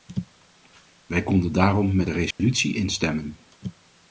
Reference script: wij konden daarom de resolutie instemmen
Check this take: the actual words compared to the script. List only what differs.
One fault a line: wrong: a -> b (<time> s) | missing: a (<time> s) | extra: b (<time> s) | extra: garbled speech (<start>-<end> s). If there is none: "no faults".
extra: met (1.9 s)